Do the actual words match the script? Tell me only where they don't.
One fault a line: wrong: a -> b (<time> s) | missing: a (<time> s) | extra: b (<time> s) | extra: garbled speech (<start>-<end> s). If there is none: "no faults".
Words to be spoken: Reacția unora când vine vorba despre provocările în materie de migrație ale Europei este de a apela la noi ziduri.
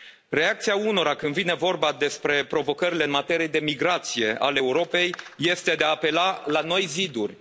no faults